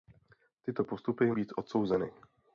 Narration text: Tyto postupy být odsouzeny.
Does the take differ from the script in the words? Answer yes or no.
no